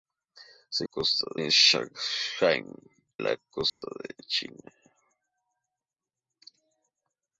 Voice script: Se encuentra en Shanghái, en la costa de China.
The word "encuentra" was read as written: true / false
false